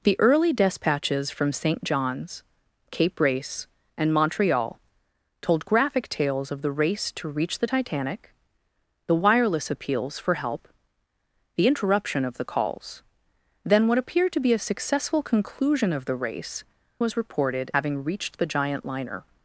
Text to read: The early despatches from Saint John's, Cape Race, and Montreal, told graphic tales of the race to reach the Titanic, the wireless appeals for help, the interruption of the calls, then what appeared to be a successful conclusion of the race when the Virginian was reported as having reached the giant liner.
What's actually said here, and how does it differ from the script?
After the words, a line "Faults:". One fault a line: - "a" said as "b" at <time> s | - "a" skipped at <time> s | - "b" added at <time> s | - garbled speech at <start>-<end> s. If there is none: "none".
The early despatches from Saint John's, Cape Race, and Montreal, told graphic tales of the race to reach the Titanic, the wireless appeals for help, the interruption of the calls, then what appeared to be a successful conclusion of the race was reported having reached the giant liner.
Faults:
- "when the Virginian" skipped at 16.6 s
- "as" skipped at 17.7 s